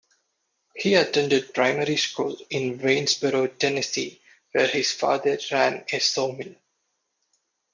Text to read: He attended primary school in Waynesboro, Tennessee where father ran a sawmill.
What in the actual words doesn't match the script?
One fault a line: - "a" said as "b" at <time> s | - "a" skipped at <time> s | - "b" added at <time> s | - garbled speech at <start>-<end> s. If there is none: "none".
- "his" added at 4.7 s